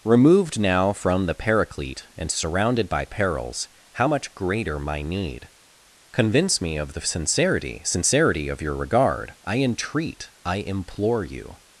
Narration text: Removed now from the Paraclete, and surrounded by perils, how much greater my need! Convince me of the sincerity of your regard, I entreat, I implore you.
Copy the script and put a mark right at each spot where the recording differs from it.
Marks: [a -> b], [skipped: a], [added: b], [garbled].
Removed now from the Paraclete, and surrounded by perils, how much greater my need! Convince me of the sincerity [added: sincerity] of your regard, I entreat, I implore you.